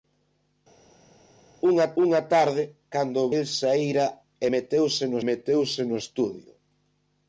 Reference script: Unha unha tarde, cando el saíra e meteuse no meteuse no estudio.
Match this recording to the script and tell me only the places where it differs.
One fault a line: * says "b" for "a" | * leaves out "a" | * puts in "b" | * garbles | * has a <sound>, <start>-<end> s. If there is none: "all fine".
all fine